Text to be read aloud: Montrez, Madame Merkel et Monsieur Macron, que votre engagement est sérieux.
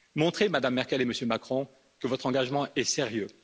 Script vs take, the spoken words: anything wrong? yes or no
no